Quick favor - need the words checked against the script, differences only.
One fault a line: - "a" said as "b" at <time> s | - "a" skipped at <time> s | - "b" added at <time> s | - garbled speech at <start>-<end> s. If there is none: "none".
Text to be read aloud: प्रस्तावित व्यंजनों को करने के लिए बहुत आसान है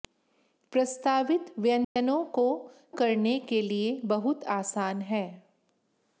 none